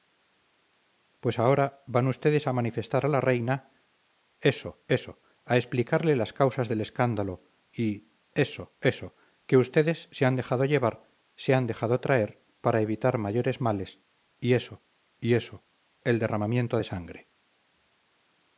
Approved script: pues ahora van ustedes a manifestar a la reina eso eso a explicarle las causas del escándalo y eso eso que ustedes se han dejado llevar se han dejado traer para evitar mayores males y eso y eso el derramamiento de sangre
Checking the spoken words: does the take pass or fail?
pass